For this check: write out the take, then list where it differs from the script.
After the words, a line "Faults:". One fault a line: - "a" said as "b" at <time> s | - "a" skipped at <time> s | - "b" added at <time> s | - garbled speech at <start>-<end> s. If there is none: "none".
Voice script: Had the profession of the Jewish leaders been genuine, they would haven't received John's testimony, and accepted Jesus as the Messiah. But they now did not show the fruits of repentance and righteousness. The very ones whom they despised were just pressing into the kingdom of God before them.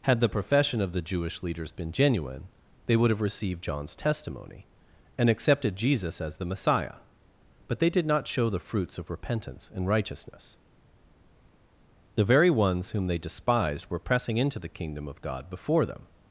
Had the profession of the Jewish leaders been genuine, they would have received John's testimony, and accepted Jesus as the Messiah. But they did not show the fruits of repentance and righteousness. The very ones whom they despised were pressing into the kingdom of God before them.
Faults:
- "haven't" said as "have" at 3.1 s
- "now" skipped at 7.9 s
- "just" skipped at 14.0 s